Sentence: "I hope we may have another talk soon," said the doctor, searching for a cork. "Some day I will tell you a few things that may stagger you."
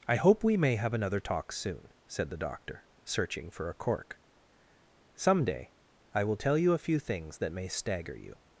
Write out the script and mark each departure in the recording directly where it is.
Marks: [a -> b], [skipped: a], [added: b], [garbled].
"I hope we may have another talk soon," said the doctor, searching for a cork. "Some day I will tell you a few things that may stagger you."